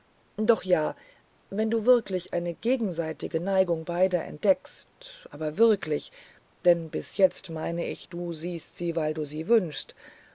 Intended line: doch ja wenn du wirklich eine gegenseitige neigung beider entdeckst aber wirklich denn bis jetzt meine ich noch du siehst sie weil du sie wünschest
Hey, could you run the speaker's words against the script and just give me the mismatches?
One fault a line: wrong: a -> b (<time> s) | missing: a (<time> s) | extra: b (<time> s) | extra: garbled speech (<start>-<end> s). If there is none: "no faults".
missing: noch (8.1 s)